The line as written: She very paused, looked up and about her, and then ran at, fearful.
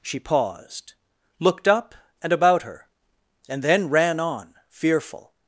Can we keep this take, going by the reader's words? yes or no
no